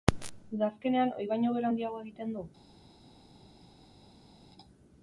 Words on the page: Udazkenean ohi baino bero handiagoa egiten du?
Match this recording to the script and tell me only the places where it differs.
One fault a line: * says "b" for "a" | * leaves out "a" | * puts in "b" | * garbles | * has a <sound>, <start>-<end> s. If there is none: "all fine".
all fine